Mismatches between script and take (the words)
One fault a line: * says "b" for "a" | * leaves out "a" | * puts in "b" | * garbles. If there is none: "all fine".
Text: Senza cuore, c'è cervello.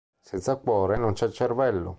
* puts in "non"